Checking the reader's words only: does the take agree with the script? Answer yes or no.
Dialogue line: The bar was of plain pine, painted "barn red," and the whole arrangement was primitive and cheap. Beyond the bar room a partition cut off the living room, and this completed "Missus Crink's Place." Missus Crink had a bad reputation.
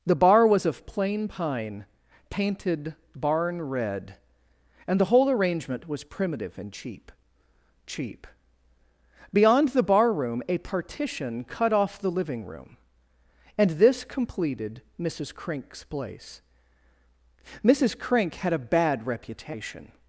no